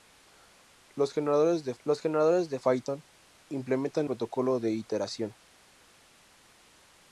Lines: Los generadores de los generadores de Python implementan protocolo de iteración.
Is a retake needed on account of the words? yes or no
no